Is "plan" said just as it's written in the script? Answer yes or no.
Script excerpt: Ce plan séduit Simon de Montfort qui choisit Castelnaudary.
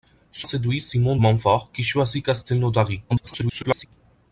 no